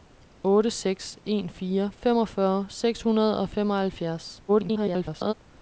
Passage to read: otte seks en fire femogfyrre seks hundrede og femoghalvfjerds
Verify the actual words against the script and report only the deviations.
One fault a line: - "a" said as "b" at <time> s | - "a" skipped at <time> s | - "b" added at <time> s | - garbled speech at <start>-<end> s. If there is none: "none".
- garbled speech at 4.5-5.3 s